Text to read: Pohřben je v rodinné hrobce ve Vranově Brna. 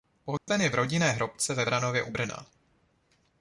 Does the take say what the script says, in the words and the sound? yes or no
no